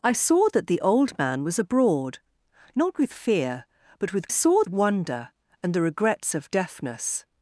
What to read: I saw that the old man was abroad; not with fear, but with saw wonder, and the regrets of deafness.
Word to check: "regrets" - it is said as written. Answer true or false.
true